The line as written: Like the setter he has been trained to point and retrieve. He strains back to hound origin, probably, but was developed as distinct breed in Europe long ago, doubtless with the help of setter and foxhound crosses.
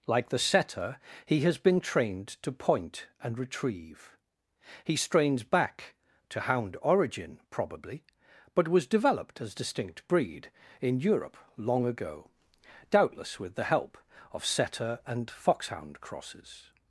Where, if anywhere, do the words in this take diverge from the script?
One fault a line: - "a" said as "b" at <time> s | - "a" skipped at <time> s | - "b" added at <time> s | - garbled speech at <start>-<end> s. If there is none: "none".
none